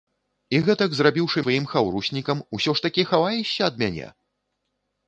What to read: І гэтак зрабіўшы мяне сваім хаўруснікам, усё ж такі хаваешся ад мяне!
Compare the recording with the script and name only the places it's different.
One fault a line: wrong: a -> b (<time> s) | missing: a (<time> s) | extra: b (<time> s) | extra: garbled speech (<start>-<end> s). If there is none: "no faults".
missing: мяне (1.4 s)